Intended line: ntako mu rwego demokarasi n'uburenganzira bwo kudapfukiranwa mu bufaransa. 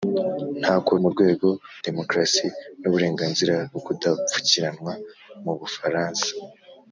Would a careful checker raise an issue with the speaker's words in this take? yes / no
no